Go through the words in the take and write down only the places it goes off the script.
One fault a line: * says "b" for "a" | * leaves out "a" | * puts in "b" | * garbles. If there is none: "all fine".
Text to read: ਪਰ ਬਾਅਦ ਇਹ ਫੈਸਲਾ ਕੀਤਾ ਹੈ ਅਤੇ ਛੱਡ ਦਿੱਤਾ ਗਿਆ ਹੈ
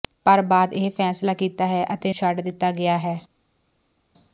all fine